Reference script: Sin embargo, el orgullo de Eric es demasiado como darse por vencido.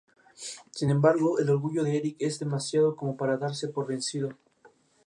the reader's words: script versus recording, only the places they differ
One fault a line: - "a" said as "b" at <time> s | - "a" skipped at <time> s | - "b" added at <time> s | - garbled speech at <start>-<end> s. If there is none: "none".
- "para" added at 3.2 s